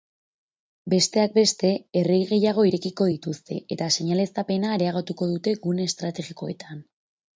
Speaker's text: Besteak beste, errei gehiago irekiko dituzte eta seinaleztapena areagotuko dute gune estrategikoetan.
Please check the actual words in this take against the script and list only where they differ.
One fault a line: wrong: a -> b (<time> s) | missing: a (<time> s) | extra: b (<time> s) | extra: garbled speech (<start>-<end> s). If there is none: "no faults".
no faults